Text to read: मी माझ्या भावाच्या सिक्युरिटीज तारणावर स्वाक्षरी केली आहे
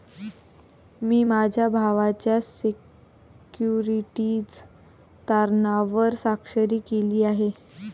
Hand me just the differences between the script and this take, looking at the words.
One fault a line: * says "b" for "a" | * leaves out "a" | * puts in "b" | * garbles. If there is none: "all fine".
all fine